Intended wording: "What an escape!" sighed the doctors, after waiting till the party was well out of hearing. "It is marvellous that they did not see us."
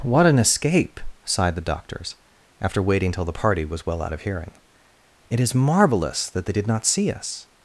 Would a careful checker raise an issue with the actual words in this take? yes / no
no